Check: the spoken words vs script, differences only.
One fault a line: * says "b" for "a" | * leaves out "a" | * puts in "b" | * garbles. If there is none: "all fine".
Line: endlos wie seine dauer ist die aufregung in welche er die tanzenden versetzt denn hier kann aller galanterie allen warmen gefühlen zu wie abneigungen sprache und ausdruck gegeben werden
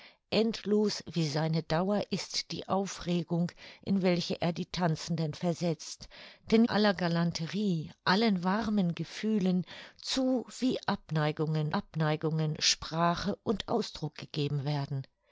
* leaves out "hier kann"
* puts in "abneigungen"